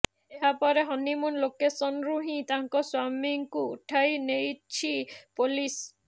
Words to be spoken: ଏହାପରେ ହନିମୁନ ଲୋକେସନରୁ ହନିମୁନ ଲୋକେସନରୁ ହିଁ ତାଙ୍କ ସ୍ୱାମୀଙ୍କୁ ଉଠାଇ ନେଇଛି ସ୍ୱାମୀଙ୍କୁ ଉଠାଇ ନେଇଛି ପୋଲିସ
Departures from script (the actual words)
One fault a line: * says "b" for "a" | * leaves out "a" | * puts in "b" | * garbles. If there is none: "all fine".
* leaves out "ହନିମୁନ ଲୋକେସନରୁ"
* leaves out "ସ୍ୱାମୀଙ୍କୁ ଉଠାଇ ନେଇଛି"